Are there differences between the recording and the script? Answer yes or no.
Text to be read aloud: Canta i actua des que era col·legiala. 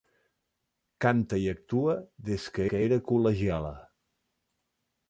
yes